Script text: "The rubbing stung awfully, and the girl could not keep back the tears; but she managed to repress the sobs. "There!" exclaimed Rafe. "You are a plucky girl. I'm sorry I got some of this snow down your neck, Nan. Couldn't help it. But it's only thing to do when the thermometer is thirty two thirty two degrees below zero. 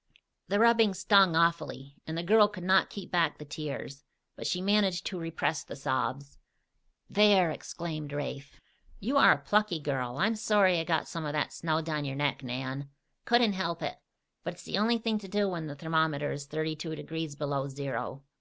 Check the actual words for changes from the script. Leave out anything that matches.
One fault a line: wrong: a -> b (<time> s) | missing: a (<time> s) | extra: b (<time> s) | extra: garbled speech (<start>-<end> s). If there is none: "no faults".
wrong: this -> that (11.3 s)
extra: the (14.6 s)
missing: thirty two (17.0 s)